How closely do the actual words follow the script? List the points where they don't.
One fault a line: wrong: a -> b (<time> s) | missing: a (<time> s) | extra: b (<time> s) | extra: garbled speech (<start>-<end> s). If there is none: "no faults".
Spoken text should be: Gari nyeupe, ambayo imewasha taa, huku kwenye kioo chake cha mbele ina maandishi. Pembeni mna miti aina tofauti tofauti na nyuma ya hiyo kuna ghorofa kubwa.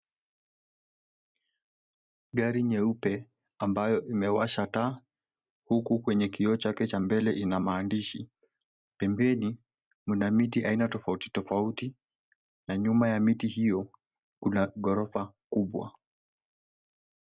extra: miti (13.2 s)